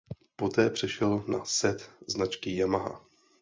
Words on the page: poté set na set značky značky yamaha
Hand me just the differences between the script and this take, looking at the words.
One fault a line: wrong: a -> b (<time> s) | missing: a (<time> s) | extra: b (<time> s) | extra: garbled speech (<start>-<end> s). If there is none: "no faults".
wrong: set -> přešel (0.7 s)
missing: značky (2.6 s)